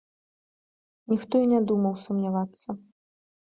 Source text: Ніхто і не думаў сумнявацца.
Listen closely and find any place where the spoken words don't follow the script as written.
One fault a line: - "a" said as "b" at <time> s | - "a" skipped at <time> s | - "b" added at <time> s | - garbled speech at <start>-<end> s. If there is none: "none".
none